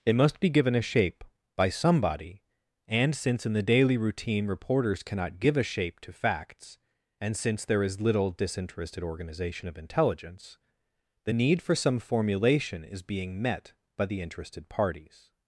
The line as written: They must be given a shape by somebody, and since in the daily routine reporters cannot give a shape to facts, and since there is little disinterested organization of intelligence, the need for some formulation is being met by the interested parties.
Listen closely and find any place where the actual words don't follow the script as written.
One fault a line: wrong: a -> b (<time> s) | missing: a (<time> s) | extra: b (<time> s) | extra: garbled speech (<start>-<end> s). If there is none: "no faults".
wrong: They -> It (0.1 s)